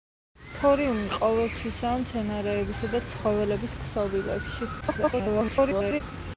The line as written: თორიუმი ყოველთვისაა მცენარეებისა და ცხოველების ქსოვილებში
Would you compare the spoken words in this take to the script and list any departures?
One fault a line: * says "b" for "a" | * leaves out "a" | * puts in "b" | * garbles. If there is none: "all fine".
* garbles